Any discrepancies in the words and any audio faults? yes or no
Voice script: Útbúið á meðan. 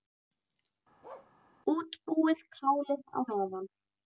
yes